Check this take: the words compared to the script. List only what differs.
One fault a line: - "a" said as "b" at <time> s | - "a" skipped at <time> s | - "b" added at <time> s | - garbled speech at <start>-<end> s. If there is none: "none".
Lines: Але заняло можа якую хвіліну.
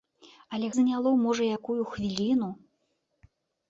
none